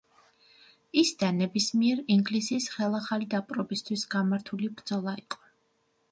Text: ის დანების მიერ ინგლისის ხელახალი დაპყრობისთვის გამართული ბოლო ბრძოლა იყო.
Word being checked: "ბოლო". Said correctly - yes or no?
no